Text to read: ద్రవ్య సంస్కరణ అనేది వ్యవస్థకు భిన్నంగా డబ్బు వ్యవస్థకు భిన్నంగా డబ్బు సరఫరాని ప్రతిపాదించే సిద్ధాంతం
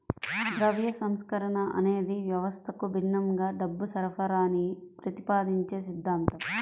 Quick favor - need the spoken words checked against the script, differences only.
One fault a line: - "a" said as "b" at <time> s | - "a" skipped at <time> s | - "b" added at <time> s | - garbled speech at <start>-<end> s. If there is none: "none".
- "వ్యవస్థకు భిన్నంగా డబ్బు" skipped at 3.9 s